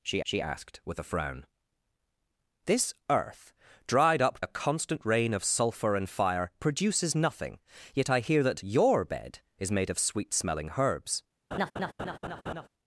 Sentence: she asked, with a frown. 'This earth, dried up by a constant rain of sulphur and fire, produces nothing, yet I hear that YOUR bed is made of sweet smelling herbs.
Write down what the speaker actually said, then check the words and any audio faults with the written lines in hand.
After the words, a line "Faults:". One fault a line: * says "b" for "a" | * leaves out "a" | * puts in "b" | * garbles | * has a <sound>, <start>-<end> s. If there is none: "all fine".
she she asked, with a frown. 'This earth, dried up a constant rain of sulphur and fire, produces nothing, yet I hear that YOUR bed is made of sweet smelling herbs.
Faults:
* puts in "she"
* leaves out "by"
* has a laugh, 11.5-12.7 s